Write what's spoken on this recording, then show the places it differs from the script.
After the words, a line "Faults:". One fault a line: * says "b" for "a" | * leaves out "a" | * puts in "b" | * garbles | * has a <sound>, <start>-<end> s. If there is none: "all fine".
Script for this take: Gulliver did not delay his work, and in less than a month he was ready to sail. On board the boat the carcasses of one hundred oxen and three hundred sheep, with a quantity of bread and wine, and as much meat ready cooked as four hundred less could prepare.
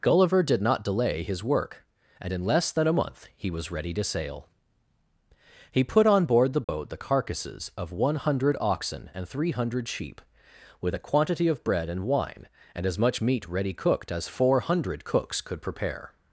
Gulliver did not delay his work, and in less than a month he was ready to sail. He put on board the boat the carcasses of one hundred oxen and three hundred sheep, with a quantity of bread and wine, and as much meat ready cooked as four hundred cooks could prepare.
Faults:
* puts in "He put"
* has a dropout, 6.6-6.7 s
* says "cooks" for "less"